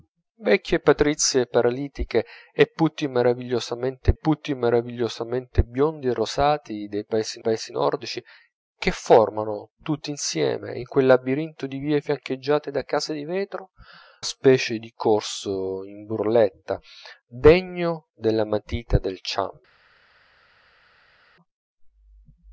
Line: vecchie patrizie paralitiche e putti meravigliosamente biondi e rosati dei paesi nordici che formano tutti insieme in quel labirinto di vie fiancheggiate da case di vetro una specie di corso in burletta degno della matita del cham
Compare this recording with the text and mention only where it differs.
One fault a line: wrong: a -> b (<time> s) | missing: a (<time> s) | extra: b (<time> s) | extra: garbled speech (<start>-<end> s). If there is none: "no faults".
extra: putti meravigliosamente (4.1 s)
extra: paesi (7.4 s)
missing: una (13.7 s)